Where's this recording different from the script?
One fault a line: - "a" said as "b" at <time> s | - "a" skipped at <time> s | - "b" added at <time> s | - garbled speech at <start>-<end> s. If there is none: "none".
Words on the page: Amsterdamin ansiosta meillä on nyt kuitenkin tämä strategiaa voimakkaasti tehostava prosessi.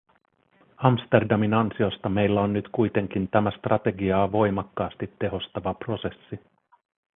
none